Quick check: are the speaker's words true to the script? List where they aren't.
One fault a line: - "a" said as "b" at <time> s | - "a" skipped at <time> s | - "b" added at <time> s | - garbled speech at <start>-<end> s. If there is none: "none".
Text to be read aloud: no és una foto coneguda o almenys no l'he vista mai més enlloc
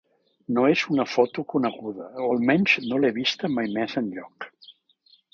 none